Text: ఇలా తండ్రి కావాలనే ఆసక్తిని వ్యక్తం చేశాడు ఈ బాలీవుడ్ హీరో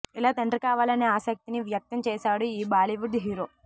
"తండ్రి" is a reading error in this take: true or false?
false